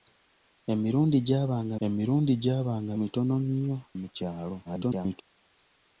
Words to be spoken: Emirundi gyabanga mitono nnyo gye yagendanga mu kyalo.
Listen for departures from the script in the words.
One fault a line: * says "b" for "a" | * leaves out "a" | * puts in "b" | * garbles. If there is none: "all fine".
* puts in "emirundi gyabanga"
* leaves out "gye yagendanga"
* garbles